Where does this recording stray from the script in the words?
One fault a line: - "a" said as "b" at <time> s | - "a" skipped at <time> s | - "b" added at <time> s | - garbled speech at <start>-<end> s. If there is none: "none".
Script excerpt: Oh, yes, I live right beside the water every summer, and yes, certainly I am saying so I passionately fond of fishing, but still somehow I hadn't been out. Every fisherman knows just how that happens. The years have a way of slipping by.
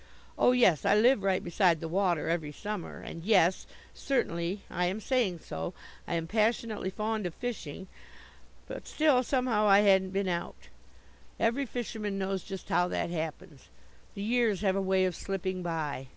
- "am" added at 6.1 s